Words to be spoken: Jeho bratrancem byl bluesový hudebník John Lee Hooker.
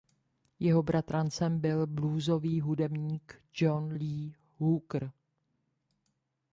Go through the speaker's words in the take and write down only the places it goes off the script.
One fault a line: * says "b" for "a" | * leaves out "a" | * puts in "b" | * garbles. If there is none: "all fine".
all fine